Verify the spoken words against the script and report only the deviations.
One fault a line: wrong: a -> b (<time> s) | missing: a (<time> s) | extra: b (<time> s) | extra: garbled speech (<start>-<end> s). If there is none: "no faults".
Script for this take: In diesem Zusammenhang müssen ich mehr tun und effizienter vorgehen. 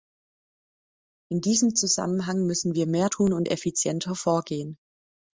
wrong: ich -> wir (2.7 s)